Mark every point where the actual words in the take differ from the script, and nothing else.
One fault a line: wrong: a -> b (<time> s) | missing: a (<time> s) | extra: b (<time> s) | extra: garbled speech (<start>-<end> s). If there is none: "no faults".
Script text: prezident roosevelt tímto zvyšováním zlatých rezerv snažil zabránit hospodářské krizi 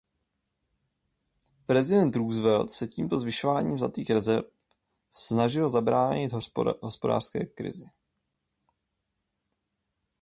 extra: se (2.7 s)